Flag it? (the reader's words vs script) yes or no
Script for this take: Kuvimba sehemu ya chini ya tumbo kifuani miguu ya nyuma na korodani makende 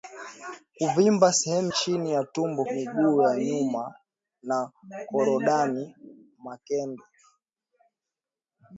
yes